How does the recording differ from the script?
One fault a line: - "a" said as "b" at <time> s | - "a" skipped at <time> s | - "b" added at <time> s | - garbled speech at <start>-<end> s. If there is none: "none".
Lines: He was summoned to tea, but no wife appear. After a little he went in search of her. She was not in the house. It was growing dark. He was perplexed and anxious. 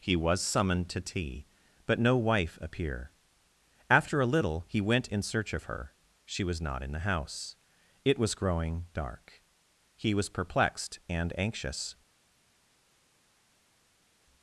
none